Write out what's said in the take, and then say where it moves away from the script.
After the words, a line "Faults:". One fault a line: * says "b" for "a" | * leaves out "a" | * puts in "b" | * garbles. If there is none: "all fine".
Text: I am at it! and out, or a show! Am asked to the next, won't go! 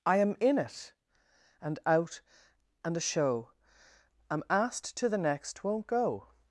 I am in it! and out, and a show! Am asked to the next, won't go!
Faults:
* says "in" for "at"
* says "and" for "or"